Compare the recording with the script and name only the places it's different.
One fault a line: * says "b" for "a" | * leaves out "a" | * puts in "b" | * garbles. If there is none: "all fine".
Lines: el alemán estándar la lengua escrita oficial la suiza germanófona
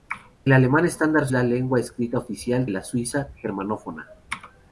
all fine